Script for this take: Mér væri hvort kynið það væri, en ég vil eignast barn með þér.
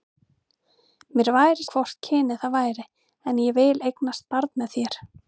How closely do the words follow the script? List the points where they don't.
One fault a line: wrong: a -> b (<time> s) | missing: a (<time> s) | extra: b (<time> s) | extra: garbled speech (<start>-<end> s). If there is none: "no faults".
no faults